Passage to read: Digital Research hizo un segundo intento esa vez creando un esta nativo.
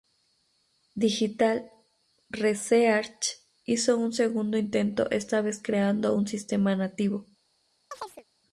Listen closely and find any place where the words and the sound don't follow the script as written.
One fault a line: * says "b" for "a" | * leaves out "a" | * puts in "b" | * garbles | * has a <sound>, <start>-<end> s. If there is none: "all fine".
* says "esta" for "esa"
* says "sistema" for "esta"
* has a chirp, 7.9-8.2 s